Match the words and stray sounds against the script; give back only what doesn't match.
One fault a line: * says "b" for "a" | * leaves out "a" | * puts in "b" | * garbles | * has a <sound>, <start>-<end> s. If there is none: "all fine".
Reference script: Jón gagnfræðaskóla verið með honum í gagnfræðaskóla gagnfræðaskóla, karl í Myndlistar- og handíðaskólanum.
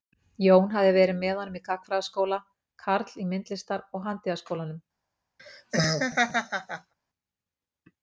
* says "hafði" for "gagnfræðaskóla"
* leaves out "gagnfræðaskóla"
* has a laugh, 5.4-6.9 s